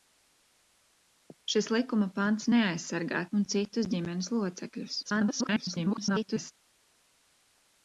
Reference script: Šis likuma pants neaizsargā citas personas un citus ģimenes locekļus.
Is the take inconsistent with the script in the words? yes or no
yes